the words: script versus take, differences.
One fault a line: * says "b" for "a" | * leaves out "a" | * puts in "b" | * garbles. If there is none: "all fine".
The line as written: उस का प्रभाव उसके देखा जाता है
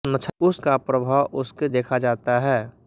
all fine